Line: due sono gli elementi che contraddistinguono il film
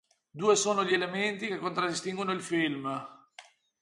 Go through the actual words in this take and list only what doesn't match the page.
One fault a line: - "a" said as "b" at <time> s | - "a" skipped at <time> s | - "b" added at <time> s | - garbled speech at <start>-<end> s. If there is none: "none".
none